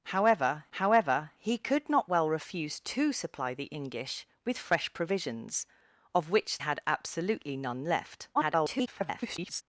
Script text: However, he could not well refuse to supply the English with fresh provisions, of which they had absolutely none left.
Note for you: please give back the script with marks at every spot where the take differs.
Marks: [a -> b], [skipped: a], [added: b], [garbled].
However, [added: however] he could not well refuse to supply the English with fresh provisions, of which [skipped: they] had absolutely none left. [garbled]